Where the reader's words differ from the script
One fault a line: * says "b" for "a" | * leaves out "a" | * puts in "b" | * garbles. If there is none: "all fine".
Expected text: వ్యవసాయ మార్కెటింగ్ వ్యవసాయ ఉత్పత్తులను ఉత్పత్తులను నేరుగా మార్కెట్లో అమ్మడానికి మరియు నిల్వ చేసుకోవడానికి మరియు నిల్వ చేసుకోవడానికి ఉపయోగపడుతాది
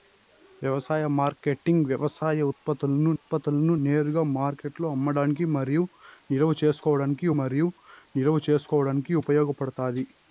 all fine